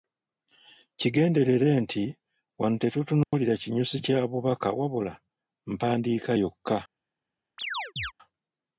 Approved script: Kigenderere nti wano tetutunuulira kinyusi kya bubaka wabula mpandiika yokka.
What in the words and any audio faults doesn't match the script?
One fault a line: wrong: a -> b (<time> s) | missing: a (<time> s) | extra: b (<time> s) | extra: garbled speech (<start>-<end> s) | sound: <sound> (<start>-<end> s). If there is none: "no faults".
sound: dropout (3.2-3.3 s)
sound: chirp (7.6-8.1 s)